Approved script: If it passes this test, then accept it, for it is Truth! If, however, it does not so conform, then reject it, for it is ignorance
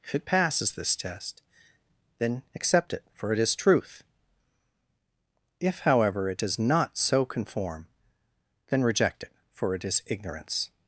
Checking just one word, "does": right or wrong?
right